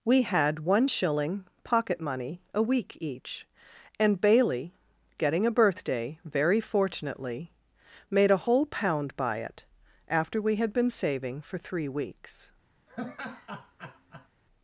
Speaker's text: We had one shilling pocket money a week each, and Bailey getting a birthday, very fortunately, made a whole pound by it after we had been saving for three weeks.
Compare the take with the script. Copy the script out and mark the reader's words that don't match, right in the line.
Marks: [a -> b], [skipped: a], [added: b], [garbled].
We had one shilling pocket money a week each, and Bailey getting a birthday, very fortunately, made a whole pound by it after we had been saving for three weeks.